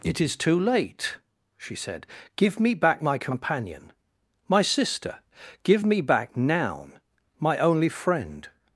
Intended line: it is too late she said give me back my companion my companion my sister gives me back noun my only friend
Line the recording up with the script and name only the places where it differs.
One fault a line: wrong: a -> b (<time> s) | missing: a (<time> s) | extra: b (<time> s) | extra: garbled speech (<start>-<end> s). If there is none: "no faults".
missing: companion my (4.6 s)
wrong: gives -> give (5.6 s)